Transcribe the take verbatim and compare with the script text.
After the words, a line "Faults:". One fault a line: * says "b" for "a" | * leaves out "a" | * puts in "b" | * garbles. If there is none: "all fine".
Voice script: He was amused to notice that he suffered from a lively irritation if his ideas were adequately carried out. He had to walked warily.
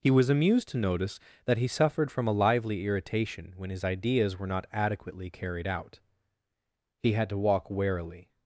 He was amused to notice that he suffered from a lively irritation when his ideas were not adequately carried out. He had to walk warily.
Faults:
* says "when" for "if"
* puts in "not"
* says "walk" for "walked"